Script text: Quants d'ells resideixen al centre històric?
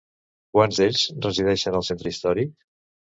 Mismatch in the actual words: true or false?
false